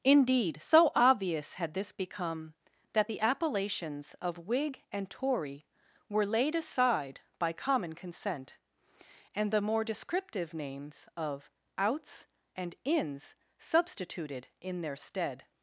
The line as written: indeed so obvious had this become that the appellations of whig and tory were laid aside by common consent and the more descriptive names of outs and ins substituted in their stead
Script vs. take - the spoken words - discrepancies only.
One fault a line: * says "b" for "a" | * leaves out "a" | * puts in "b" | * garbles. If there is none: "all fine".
all fine